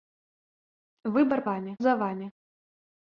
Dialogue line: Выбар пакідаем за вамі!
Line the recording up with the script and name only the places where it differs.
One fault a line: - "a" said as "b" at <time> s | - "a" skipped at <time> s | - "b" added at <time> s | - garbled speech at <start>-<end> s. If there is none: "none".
- "пакідаем" said as "вамі" at 1.5 s